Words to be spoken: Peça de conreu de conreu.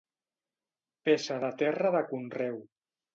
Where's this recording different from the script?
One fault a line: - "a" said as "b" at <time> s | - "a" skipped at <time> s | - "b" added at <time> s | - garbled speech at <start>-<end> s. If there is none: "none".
- "conreu" said as "terra" at 1.6 s